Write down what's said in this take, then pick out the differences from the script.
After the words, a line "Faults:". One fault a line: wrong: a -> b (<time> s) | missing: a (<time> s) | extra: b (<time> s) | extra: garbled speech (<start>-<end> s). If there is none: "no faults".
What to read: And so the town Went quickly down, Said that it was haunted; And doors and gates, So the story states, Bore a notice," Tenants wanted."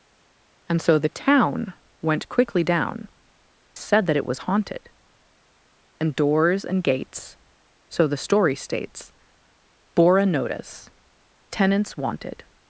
And so the town Went quickly down, Said that it was haunted; And doors and gates, So the story states, Bore a notice," Tenants wanted."
Faults:
no faults